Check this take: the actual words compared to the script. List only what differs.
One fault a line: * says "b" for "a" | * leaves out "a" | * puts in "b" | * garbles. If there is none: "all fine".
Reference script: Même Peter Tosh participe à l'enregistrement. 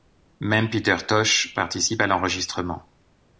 all fine